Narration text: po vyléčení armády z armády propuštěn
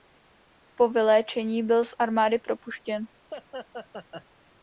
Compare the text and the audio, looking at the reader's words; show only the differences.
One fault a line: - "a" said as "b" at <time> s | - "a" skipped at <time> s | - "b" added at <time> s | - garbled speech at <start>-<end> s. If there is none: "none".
- "armády" said as "byl" at 1.6 s